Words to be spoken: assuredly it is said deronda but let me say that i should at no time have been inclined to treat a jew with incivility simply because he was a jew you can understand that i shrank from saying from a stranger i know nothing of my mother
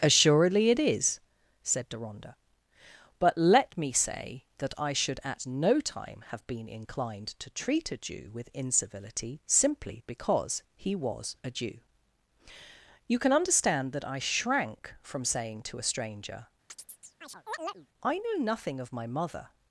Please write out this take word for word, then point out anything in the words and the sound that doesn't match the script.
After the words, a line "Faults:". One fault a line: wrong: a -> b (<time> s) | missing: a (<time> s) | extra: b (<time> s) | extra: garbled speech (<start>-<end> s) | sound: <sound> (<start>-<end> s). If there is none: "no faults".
assuredly it is said deronda but let me say that i should at no time have been inclined to treat a jew with incivility simply because he was a jew you can understand that i shrank from saying to a stranger i know nothing of my mother
Faults:
wrong: from -> to (15.6 s)
sound: chirp (16.7-17.9 s)